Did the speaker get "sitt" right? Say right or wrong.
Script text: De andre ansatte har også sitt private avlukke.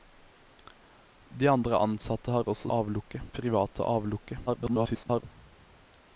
wrong